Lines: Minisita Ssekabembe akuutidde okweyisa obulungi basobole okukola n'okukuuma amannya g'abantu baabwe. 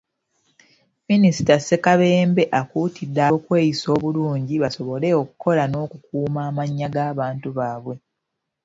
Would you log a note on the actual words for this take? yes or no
no